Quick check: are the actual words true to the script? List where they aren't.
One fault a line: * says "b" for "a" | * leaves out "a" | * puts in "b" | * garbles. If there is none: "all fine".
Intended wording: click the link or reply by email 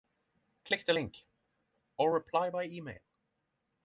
all fine